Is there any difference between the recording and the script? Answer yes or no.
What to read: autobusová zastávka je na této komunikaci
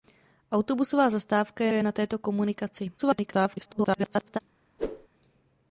yes